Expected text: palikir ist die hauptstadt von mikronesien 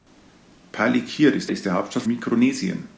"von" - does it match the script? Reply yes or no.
no